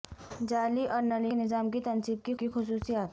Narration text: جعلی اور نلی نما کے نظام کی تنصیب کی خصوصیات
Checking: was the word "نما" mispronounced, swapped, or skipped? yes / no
yes